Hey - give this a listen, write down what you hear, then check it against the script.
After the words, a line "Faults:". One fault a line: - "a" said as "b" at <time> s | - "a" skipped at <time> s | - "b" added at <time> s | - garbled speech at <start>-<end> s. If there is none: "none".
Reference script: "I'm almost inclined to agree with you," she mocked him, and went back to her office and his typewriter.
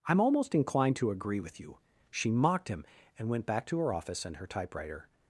"I'm almost inclined to agree with you," she mocked him, and went back to her office and her typewriter.
Faults:
- "his" said as "her" at 4.4 s